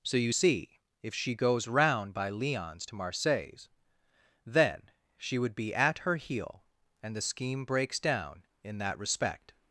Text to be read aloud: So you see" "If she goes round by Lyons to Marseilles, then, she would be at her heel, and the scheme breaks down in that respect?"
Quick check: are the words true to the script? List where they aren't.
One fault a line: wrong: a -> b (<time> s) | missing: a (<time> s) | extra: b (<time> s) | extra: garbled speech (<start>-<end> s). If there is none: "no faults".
no faults